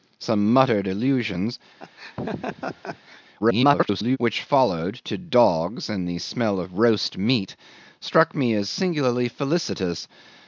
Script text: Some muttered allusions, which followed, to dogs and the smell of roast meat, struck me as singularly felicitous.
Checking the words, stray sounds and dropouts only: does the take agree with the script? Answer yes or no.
no